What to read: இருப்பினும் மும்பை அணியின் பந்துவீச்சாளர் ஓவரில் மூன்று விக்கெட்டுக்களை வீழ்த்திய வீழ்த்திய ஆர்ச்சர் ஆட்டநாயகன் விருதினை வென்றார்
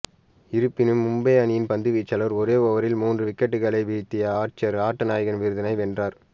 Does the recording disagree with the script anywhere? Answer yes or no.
yes